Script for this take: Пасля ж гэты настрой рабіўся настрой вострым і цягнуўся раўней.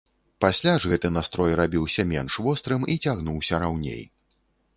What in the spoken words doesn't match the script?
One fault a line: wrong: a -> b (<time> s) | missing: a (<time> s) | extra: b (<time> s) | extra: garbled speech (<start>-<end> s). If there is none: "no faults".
wrong: настрой -> менш (2.1 s)